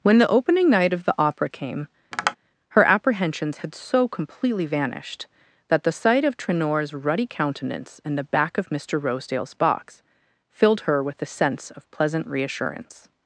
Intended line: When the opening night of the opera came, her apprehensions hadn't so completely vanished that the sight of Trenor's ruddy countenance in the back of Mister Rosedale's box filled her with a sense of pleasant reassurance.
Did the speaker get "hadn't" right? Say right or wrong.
wrong